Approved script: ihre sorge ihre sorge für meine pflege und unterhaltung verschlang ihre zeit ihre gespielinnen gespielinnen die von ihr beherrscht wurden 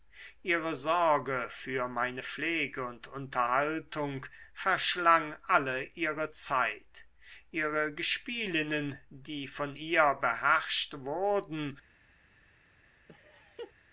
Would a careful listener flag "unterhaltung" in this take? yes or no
no